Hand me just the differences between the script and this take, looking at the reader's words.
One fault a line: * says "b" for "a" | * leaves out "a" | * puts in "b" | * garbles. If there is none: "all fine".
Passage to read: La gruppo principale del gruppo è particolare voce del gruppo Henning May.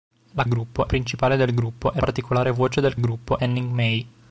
all fine